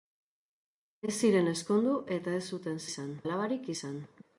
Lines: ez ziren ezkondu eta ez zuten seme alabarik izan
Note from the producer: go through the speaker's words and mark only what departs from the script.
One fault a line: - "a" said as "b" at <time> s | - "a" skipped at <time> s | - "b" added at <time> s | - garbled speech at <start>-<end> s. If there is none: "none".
- "seme" said as "izan" at 2.9 s